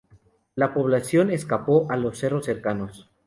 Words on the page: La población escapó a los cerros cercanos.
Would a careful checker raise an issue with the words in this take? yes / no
no